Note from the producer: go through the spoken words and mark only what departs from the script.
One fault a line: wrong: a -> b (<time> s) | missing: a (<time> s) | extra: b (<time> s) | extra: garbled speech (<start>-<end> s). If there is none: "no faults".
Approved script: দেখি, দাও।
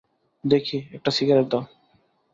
extra: একটা সিগারেট (0.9 s)